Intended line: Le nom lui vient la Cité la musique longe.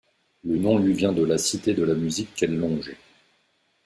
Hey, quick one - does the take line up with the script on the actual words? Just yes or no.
no